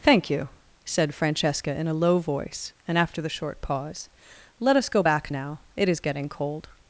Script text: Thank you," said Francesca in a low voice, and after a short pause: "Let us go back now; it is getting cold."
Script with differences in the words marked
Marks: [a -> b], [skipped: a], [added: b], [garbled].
Thank you," said Francesca in a low voice, and after [a -> the] short pause: "Let us go back now; it is getting cold."